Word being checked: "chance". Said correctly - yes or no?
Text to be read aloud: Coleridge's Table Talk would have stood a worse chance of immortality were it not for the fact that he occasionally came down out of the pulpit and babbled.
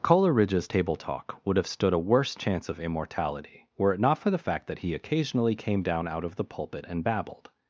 yes